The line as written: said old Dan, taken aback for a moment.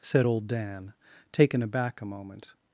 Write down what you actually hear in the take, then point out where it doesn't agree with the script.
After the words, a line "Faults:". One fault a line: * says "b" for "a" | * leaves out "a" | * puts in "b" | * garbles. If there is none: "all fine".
said old Dan, taken aback a moment.
Faults:
* leaves out "for"